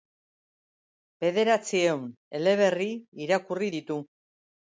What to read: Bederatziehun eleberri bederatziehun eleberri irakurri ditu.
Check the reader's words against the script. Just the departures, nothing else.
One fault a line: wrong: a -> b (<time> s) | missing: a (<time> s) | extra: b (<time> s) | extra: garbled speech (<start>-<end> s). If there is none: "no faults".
missing: bederatziehun eleberri (2.9 s)